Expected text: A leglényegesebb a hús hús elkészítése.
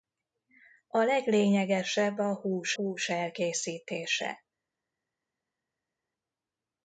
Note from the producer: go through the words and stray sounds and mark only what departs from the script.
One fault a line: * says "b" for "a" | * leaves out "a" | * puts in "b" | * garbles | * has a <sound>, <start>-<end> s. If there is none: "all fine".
all fine